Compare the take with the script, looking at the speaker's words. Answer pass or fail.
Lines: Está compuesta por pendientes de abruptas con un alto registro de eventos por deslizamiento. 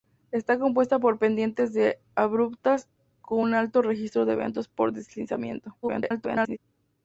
fail